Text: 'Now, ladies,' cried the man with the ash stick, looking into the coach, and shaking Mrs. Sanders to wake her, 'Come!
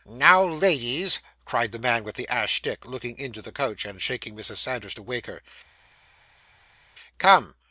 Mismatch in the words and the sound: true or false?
false